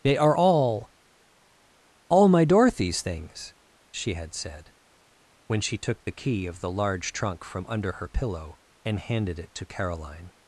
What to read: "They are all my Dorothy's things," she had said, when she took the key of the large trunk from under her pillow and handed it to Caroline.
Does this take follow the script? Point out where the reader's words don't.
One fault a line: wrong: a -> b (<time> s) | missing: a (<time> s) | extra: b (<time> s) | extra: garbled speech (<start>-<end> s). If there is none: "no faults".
extra: all (2.1 s)